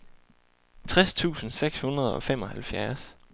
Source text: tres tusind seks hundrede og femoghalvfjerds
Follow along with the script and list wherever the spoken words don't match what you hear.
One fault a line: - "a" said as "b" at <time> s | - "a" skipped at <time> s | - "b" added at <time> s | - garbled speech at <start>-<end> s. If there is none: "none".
none